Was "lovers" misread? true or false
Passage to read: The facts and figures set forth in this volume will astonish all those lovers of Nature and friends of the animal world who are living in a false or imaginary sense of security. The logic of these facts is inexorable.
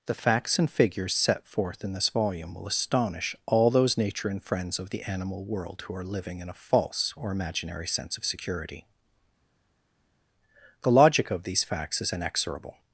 true